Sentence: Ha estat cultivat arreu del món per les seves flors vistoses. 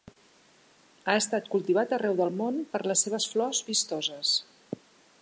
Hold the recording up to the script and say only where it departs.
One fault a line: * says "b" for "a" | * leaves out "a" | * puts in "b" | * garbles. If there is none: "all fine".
all fine